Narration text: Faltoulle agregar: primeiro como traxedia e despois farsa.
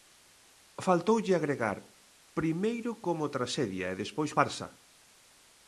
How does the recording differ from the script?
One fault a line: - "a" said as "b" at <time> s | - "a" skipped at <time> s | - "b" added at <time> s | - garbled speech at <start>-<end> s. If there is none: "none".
none